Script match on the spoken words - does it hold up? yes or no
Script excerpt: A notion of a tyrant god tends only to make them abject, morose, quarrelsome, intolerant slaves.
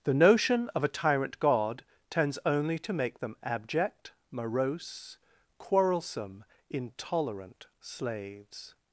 no